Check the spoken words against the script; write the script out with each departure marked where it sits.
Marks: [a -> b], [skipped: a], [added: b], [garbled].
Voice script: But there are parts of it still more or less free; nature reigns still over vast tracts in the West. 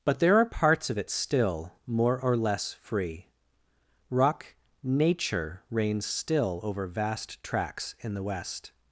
But there are parts of it still more or less free; [added: rock] nature reigns still over vast tracts in the West.